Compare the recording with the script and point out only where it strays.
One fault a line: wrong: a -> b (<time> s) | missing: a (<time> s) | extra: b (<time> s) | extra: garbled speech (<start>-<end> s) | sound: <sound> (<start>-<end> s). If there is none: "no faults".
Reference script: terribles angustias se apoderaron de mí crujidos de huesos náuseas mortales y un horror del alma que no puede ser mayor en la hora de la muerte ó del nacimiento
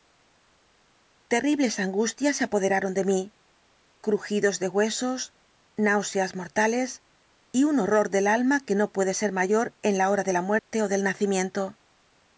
sound: dropout (10.6-10.7 s)